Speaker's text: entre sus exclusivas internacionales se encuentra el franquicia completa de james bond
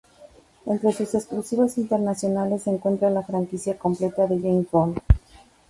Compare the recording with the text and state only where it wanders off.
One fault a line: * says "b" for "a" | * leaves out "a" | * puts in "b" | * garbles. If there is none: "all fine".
* says "la" for "el"